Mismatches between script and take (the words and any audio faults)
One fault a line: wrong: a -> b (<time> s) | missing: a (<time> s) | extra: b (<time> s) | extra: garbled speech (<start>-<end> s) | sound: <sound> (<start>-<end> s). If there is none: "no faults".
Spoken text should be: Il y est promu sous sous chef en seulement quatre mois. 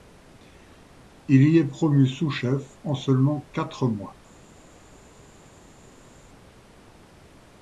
missing: sous (2.3 s)